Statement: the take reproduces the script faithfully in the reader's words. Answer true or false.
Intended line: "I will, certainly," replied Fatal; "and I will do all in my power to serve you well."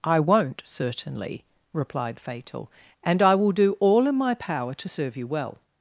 false